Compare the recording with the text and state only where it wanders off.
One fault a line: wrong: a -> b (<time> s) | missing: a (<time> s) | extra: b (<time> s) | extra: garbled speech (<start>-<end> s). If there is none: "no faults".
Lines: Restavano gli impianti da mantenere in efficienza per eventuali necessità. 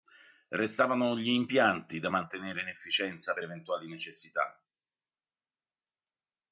no faults